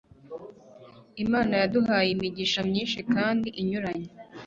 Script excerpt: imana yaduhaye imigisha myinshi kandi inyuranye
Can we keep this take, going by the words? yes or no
yes